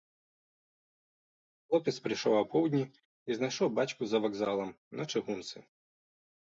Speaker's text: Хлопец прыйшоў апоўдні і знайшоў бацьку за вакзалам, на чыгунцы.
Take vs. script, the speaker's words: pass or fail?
pass